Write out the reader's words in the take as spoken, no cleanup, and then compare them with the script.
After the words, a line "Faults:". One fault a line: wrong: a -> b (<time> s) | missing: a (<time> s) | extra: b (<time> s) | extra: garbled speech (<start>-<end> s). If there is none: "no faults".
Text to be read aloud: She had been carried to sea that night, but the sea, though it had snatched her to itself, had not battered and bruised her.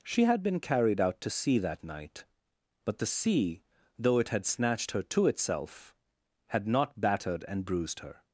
She had been carried out to sea that night, but the sea, though it had snatched her to itself, had not battered and bruised her.
Faults:
extra: out (1.0 s)